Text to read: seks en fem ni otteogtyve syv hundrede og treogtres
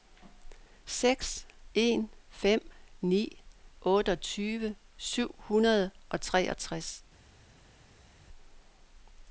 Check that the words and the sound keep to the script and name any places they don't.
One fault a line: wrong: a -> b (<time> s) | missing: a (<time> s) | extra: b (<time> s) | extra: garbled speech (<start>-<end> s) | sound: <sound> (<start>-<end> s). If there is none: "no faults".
no faults